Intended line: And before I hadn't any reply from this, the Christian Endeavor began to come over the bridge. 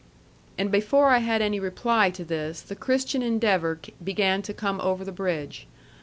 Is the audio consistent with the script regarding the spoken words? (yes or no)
no